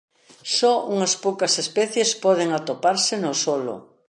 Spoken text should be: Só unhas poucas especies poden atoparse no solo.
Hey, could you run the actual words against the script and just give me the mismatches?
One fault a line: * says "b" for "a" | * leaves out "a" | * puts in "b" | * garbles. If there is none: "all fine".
all fine